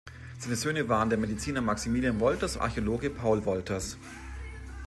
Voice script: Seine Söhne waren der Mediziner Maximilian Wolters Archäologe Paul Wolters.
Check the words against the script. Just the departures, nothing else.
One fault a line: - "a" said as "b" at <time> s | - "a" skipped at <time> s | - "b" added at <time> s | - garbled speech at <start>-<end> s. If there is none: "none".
none